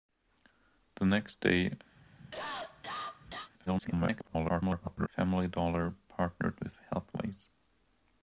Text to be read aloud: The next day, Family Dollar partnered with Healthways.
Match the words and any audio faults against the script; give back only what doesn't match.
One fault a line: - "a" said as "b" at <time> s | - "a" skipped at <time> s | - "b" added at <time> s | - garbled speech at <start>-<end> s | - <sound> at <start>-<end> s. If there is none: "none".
- cough at 2.0-3.5 s
- garbled speech at 3.7-5.1 s